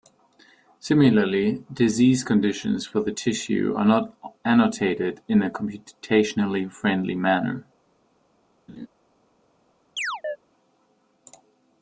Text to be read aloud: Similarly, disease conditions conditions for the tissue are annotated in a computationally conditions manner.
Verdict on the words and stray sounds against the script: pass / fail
fail